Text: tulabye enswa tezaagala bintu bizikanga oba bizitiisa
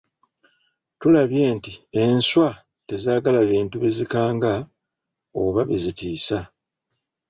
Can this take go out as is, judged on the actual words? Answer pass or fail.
fail